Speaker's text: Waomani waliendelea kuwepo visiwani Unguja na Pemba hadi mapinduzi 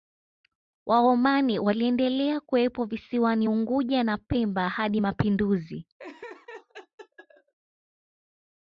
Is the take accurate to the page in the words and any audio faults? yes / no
no